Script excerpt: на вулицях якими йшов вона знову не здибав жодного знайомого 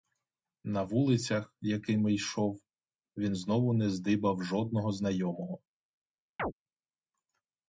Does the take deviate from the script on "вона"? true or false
true